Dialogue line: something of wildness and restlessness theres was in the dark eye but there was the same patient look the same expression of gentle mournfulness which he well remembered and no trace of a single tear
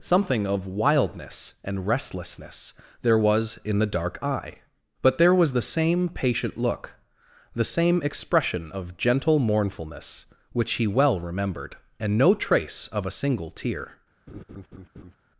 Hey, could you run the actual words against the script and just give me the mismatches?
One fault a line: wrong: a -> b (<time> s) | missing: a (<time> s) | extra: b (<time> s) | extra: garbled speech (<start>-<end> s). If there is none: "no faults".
wrong: theres -> there (3.0 s)